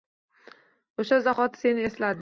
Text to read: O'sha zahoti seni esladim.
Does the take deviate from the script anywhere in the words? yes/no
no